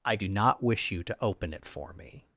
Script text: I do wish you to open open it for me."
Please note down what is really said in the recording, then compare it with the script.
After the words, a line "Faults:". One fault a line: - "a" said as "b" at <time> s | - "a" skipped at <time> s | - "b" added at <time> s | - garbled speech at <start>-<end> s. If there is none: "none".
I do not wish you to open it for me."
Faults:
- "not" added at 0.2 s
- "open" skipped at 1.5 s